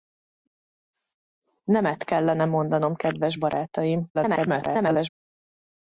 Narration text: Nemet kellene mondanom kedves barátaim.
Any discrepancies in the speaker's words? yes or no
yes